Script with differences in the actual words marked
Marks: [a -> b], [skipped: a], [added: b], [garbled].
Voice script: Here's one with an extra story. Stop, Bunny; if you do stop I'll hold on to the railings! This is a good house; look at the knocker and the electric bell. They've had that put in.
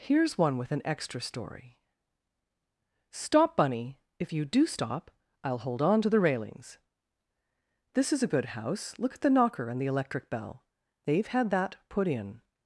Here's one with an extra story. Stop, Bunny; if you do stop I'll hold on to the railings! This is a good house; look at the knocker and the electric bell. They've had that put in.